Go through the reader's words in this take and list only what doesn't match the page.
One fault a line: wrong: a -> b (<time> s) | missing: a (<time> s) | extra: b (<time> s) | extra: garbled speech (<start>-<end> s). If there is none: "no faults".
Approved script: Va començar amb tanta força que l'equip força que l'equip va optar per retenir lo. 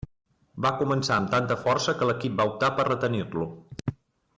missing: força que l'equip (2.4 s)